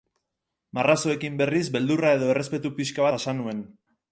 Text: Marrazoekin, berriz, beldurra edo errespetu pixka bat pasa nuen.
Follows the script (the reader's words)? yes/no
no